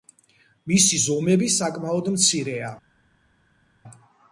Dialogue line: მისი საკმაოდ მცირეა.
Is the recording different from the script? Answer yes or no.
yes